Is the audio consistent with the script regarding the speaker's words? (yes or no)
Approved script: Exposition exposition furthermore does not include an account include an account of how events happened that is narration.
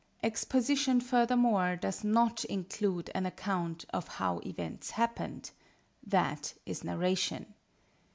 no